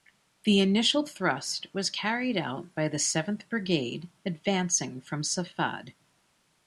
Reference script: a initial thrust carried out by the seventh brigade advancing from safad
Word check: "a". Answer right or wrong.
wrong